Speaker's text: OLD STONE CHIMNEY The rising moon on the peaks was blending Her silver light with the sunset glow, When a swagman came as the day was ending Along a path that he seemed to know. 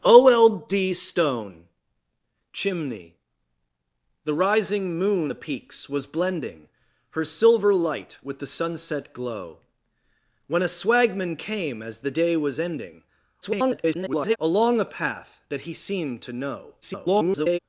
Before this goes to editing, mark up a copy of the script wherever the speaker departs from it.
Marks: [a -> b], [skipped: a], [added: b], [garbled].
OLD STONE CHIMNEY The rising moon [skipped: on] the peaks was blending Her silver light with the sunset glow, When a swagman came as the day was ending [garbled] Along a path that he seemed to know. [garbled]